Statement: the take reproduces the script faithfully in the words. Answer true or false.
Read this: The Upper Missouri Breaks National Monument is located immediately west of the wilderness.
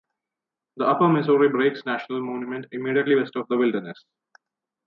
false